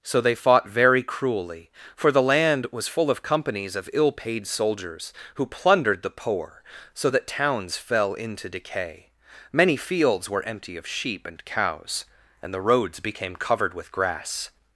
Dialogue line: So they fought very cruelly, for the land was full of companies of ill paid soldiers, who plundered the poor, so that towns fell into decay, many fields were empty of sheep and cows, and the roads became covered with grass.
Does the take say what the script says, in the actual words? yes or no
yes